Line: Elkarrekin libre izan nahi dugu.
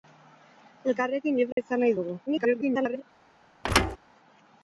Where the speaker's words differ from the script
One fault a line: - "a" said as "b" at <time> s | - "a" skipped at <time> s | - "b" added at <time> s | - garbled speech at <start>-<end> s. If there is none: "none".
- garbled speech at 2.3-3.0 s